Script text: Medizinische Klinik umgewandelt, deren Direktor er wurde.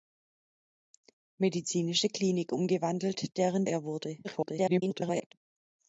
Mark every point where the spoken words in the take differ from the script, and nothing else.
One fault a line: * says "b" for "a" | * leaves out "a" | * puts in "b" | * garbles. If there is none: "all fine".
* leaves out "Direktor"
* garbles